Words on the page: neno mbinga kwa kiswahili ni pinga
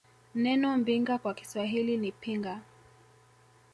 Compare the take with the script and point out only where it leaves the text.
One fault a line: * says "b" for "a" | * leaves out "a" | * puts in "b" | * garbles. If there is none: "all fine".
all fine